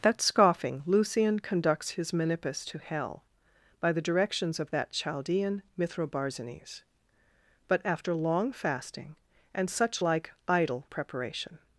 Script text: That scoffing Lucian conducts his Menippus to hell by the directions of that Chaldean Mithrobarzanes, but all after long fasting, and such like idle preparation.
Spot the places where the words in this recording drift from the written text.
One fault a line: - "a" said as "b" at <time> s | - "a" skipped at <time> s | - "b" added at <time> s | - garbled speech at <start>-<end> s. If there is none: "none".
- "all" skipped at 7.8 s